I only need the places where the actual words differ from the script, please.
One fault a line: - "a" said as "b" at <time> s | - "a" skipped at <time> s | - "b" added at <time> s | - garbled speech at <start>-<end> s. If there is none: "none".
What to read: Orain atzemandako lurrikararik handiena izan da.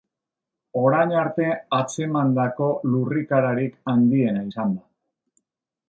- "arte" added at 1.2 s